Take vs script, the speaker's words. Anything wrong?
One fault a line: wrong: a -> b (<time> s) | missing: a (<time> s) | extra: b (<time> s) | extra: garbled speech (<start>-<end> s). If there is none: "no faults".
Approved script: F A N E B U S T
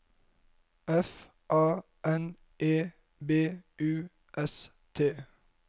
no faults